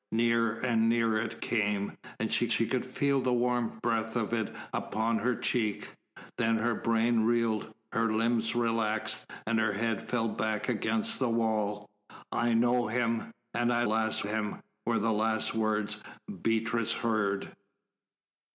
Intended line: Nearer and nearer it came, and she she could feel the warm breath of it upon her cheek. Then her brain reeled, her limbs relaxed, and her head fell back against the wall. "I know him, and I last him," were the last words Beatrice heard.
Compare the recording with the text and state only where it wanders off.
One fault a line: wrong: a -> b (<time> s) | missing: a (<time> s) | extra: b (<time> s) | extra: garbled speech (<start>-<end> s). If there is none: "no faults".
no faults